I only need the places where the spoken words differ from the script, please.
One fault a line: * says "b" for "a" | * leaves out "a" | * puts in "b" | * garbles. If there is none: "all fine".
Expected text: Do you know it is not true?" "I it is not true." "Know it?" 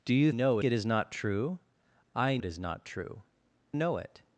all fine